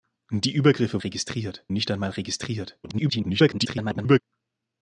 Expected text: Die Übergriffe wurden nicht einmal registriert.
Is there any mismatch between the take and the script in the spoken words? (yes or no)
yes